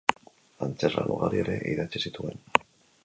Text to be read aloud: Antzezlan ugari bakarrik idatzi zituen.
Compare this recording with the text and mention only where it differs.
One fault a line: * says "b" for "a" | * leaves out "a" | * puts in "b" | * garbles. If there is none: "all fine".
* says "ere" for "bakarrik"